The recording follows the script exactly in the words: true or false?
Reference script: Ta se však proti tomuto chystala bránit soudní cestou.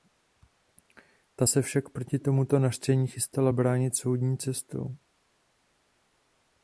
false